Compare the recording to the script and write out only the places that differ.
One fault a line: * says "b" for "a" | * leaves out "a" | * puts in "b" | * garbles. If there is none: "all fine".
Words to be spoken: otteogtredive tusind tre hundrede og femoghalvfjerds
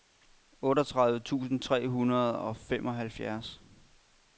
all fine